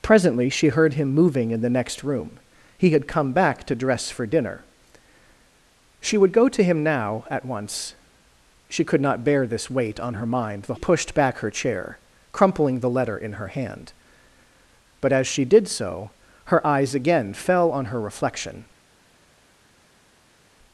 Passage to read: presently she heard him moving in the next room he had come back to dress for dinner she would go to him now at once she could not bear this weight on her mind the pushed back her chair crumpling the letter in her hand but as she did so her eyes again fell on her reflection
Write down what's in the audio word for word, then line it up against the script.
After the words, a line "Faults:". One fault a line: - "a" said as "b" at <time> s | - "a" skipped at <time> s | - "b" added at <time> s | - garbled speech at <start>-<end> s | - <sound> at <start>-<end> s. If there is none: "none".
presently she heard him moving in the next room he had come back to dress for dinner she would go to him now at once she could not bear this weight on her mind the pushed back her chair crumpling the letter in her hand but as she did so her eyes again fell on her reflection
Faults:
none